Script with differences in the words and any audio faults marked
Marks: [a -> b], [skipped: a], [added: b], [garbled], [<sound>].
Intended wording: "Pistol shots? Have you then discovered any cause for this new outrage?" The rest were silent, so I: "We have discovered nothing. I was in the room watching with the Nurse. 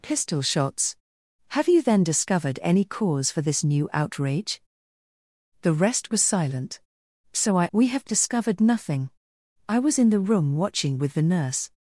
"Pistol shots? Have you then discovered any cause for this new outrage?" The rest were silent, so I: "We have discovered nothing. I was in the room watching with the Nurse.